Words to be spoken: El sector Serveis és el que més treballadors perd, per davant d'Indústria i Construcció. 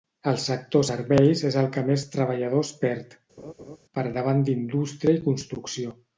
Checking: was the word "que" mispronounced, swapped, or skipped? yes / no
no